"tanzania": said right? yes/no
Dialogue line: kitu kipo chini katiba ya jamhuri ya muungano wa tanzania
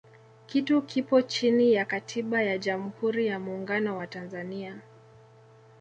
yes